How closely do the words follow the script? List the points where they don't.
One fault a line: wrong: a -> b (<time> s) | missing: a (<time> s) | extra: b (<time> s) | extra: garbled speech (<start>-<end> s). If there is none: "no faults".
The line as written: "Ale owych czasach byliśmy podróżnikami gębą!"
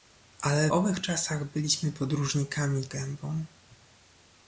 no faults